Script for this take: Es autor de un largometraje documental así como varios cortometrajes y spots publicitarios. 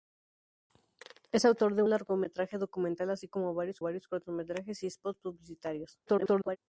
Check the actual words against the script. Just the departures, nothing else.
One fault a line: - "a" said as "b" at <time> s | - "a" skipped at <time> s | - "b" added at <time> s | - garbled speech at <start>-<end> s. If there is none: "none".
- "un" skipped at 1.8 s
- "varios" added at 3.8 s
- garbled speech at 6.1-6.6 s